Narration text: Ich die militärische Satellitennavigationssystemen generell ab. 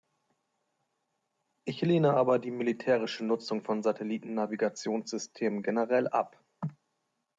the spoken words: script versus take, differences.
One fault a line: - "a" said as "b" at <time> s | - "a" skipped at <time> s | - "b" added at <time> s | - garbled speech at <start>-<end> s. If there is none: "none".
- "lehne aber" added at 1.8 s
- "Nutzung von" added at 3.2 s